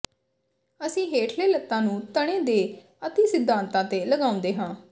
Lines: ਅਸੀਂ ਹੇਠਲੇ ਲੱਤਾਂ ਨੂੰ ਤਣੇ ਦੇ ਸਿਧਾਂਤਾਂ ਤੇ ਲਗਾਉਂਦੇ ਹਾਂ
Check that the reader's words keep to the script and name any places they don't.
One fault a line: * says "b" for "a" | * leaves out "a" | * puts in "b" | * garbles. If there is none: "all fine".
* puts in "ਅਤਿ"